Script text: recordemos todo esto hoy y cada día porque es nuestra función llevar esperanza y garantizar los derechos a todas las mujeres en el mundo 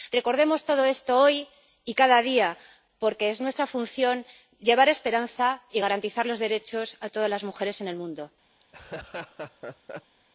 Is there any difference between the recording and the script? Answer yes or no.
no